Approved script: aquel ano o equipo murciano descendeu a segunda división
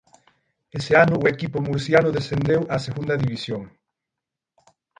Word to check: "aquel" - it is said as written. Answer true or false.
false